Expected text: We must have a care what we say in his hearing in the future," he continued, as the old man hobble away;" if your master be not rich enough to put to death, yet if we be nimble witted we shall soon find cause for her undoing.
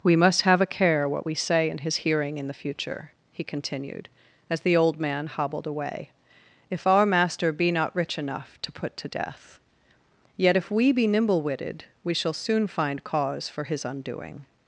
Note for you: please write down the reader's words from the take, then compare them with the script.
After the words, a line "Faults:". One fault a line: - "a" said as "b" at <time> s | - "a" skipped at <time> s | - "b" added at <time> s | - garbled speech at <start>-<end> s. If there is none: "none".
We must have a care what we say in his hearing in the future," he continued, as the old man hobbled away;" if our master be not rich enough to put to death, yet if we be nimble witted we shall soon find cause for his undoing.
Faults:
- "hobble" said as "hobbled" at 5.3 s
- "your" said as "our" at 6.9 s
- "her" said as "his" at 13.6 s